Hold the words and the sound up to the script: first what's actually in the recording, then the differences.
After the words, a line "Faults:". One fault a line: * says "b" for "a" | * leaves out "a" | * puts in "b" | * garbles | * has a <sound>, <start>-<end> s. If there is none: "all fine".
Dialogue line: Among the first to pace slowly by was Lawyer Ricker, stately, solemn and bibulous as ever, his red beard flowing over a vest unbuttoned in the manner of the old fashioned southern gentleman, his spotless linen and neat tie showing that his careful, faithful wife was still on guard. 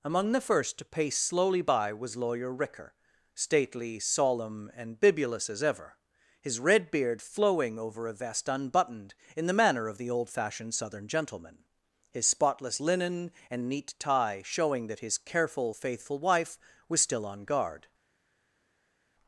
Among the first to pace slowly by was Lawyer Ricker, stately, solemn and bibulous as ever, his red beard flowing over a vest unbuttoned in the manner of the old fashioned southern gentleman, his spotless linen and neat tie showing that his careful, faithful wife was still on guard.
Faults:
all fine